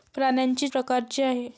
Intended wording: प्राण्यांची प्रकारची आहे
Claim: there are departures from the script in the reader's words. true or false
false